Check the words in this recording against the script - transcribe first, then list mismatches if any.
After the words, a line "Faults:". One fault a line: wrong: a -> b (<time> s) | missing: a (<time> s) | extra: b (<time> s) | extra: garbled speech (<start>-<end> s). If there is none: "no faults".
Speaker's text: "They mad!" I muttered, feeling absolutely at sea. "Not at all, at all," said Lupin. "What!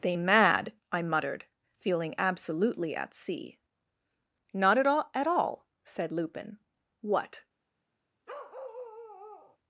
"They mad!" I muttered, feeling absolutely at sea. "Not at all, at all," said Lupin. "What!
Faults:
no faults